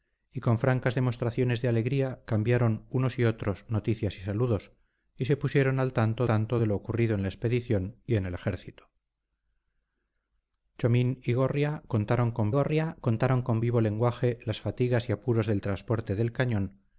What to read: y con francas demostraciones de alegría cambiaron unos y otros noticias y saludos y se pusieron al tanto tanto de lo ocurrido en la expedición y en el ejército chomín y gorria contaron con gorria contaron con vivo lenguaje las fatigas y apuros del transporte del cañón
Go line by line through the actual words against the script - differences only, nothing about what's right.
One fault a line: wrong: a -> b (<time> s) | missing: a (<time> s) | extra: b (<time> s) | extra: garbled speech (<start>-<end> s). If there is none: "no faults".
no faults